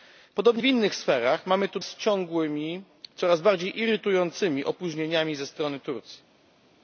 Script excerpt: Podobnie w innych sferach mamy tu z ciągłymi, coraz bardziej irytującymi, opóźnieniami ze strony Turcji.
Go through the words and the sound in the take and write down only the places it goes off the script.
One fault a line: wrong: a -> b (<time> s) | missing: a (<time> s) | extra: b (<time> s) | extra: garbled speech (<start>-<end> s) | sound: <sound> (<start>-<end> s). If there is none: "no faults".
no faults